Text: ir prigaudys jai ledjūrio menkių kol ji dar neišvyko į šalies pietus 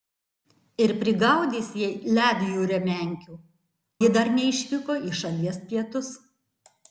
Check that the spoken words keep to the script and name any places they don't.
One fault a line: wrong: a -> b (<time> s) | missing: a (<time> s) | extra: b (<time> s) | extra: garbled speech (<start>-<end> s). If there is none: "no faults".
missing: kol (3.4 s)